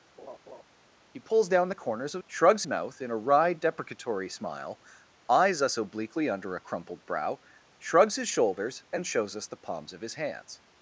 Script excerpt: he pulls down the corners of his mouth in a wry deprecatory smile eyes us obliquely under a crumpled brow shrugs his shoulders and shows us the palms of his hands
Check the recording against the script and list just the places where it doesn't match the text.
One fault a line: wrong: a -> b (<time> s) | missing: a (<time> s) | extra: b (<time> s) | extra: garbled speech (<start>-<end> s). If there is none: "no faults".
wrong: his -> shrugs (2.3 s)